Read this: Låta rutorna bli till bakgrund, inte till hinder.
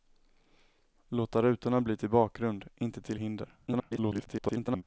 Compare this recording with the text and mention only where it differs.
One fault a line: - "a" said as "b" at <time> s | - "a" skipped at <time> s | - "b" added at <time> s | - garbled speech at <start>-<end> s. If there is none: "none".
- garbled speech at 3.7-4.8 s